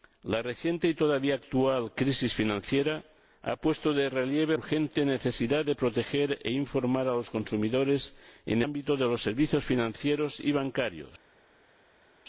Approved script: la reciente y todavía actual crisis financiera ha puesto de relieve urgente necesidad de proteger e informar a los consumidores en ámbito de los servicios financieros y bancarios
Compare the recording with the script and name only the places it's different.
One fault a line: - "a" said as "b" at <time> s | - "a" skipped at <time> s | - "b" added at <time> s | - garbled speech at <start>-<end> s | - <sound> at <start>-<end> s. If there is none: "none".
none